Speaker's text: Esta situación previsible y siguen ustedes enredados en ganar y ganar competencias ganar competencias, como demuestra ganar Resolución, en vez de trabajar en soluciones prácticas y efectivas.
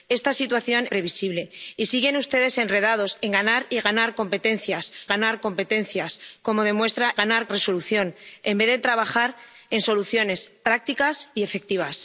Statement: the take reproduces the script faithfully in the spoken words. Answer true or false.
true